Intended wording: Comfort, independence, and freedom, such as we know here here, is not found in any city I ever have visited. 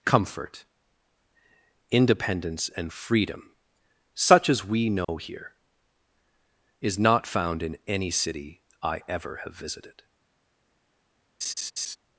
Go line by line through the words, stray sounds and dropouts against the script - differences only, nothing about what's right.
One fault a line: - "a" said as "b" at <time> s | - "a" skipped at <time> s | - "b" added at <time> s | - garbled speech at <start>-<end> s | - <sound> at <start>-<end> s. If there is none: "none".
- dropout at 5.0-5.1 s
- "here" skipped at 5.5 s
- laugh at 11.4-12.0 s